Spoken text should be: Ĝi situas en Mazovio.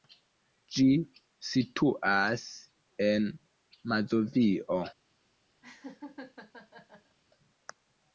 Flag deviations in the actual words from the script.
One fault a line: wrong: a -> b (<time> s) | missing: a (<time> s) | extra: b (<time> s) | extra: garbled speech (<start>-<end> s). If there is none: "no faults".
no faults